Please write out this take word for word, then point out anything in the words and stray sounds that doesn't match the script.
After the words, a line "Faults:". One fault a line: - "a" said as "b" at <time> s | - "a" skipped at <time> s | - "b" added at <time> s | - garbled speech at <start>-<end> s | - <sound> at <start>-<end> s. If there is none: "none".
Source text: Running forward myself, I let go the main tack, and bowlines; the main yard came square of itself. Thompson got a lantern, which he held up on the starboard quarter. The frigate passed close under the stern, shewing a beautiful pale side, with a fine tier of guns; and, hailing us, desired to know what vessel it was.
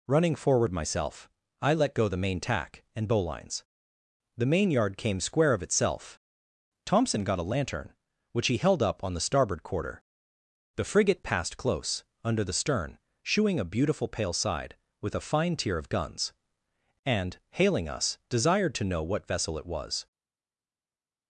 Running forward myself, I let go the main tack, and bowlines; the main yard came square of itself. Thompson got a lantern, which he held up on the starboard quarter. The frigate passed close under the stern, shewing a beautiful pale side, with a fine tier of guns; and, hailing us, desired to know what vessel it was.
Faults:
none